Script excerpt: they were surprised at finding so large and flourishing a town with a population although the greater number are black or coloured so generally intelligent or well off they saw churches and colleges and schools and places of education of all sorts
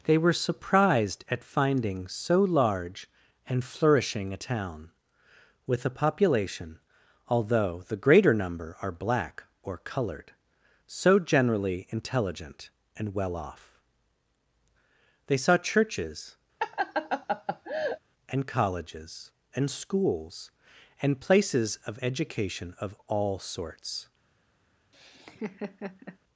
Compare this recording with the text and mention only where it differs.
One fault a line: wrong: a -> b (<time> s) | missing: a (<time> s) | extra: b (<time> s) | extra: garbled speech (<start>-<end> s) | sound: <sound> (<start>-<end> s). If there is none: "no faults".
wrong: or -> and (13.0 s)
sound: laugh (16.6-18.0 s)
sound: laugh (24.9-26.2 s)